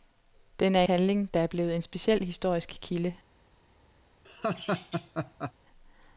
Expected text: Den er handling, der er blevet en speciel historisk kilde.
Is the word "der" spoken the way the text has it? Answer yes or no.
yes